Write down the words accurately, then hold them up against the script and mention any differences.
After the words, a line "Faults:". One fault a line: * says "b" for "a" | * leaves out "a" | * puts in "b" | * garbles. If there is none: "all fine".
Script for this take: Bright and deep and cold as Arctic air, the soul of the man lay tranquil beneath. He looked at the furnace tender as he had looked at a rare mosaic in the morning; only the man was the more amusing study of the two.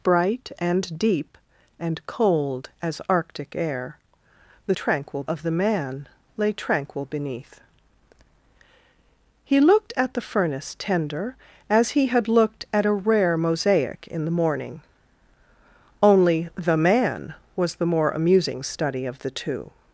Bright and deep and cold as Arctic air, the tranquil of the man lay tranquil beneath. He looked at the furnace tender as he had looked at a rare mosaic in the morning; only the man was the more amusing study of the two.
Faults:
* says "tranquil" for "soul"